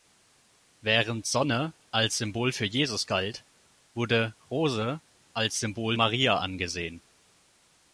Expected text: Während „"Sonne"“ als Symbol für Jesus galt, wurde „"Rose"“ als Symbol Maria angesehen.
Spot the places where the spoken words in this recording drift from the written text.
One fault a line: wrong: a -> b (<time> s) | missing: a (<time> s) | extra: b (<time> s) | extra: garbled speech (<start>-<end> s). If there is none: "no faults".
no faults